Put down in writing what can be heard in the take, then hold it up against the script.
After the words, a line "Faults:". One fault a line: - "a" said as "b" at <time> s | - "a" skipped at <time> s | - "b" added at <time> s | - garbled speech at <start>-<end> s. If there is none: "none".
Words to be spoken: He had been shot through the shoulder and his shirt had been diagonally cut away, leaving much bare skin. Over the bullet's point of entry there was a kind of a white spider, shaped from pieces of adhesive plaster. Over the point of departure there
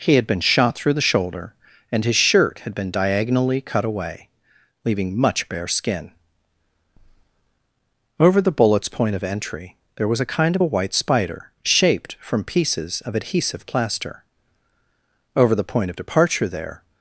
He had been shot through the shoulder and his shirt had been diagonally cut away, leaving much bare skin. Over the bullet's point of entry there was a kind of a white spider, shaped from pieces of adhesive plaster. Over the point of departure there
Faults:
none